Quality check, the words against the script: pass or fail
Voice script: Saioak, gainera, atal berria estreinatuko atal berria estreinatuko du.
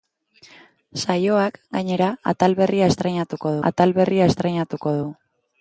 pass